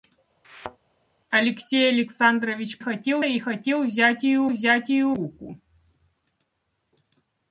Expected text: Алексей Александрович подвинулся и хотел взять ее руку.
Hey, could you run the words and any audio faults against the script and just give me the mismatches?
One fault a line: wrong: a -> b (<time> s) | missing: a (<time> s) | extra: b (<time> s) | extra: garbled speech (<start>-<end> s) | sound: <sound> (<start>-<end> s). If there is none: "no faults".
sound: thud (0.4-0.8 s)
wrong: подвинулся -> хотел (2.8 s)
extra: взять ее (4.5 s)